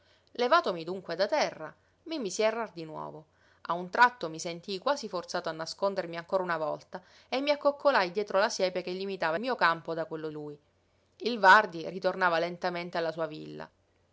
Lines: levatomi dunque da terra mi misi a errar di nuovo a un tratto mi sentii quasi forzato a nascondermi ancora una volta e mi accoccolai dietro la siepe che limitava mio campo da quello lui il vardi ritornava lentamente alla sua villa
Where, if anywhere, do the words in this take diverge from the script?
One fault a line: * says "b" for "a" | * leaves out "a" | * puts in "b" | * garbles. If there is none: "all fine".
all fine